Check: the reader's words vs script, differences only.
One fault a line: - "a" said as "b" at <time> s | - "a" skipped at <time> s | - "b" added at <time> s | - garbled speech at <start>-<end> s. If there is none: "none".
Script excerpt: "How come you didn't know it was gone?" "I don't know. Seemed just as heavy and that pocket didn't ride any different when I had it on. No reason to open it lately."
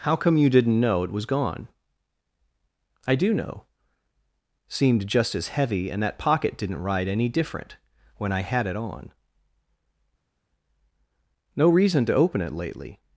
- "don't" said as "do" at 3.1 s